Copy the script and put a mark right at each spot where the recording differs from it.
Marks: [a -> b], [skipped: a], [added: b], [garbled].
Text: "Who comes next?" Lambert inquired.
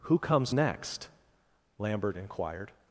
"Who comes next?" Lambert inquired.